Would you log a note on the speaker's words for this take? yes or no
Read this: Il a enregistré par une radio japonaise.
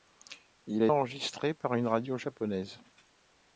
no